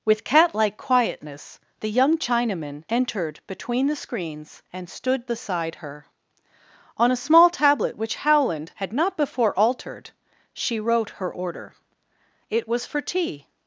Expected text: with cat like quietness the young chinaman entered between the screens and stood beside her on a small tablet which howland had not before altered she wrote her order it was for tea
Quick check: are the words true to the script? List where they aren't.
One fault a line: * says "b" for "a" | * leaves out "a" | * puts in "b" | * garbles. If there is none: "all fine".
all fine